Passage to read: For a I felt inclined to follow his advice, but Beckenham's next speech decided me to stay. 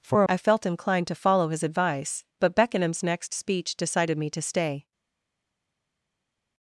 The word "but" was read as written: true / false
true